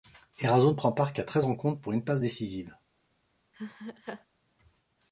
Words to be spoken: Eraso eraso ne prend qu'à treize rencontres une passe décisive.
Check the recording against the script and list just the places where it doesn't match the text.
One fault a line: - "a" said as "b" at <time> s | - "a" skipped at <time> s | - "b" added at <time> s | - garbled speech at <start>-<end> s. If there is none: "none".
- "eraso" skipped at 0.7 s
- "part" added at 0.9 s
- "pour" added at 1.8 s